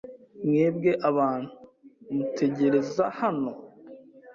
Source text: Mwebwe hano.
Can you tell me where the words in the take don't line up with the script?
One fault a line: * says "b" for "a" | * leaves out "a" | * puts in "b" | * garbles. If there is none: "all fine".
* puts in "abantu mutegereza"